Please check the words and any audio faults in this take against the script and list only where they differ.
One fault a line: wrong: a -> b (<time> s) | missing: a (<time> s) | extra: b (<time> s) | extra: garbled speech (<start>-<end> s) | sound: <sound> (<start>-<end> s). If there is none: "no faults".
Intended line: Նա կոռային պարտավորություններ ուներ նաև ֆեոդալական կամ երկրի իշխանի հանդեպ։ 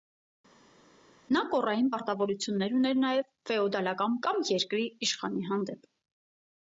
no faults